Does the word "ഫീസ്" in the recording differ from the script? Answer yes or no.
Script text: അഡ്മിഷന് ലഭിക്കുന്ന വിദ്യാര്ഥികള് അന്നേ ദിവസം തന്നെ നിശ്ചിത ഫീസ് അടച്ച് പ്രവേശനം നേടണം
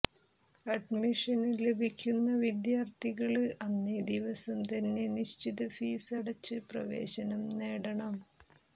no